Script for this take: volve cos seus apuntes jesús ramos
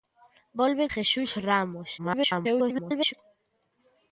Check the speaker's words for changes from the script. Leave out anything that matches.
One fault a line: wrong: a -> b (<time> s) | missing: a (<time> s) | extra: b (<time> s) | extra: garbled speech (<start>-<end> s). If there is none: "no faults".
missing: cos seus apuntes (0.8 s)
extra: garbled speech (2.0-3.1 s)